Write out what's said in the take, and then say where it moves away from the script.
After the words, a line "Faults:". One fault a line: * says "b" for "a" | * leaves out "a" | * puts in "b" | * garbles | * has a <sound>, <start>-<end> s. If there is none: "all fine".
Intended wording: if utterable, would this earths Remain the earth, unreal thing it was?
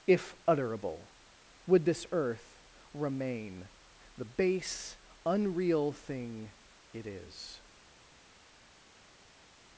if utterable, would this earth Remain the base, unreal thing it is?
Faults:
* says "earth" for "earths"
* says "base" for "earth"
* says "is" for "was"